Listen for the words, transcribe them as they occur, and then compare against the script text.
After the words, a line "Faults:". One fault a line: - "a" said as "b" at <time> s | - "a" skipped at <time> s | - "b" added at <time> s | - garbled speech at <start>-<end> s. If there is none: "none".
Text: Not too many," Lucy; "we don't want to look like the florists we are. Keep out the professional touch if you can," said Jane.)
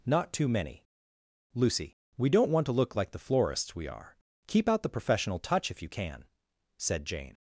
Not too many," Lucy; "we don't want to look like the florists we are. Keep out the professional touch if you can," said Jane.)
Faults:
none